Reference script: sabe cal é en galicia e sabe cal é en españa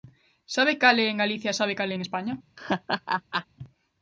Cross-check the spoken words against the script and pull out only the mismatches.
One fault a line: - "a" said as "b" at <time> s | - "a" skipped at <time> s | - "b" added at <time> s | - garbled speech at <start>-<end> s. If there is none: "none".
none